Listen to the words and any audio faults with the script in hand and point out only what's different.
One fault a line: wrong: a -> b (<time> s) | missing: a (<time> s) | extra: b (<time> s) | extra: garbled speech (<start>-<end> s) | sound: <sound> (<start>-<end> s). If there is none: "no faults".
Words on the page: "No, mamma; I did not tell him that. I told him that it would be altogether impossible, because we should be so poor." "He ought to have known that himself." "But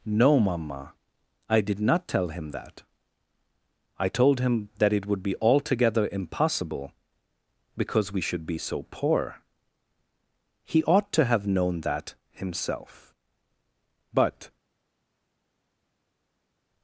no faults